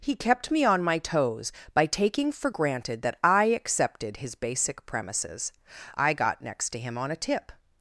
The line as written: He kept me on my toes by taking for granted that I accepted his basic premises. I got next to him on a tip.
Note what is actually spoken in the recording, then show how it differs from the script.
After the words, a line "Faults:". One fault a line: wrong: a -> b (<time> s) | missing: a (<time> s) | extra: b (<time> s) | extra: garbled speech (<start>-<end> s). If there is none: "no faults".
He kept me on my toes by taking for granted that I accepted his basic premises. I got next to him on a tip.
Faults:
no faults